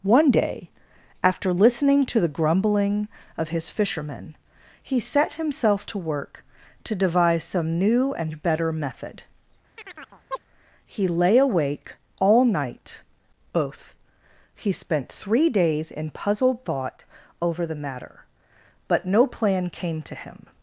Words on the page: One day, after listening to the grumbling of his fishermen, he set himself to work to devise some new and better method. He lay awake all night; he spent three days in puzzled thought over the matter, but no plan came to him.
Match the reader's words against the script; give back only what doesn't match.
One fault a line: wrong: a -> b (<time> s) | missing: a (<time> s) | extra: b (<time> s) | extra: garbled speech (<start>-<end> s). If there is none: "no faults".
extra: both (13.5 s)